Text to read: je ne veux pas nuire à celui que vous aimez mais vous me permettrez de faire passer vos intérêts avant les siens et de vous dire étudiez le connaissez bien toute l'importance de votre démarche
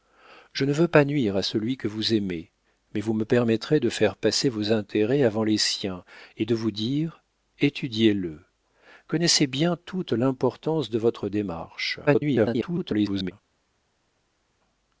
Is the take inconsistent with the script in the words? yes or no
yes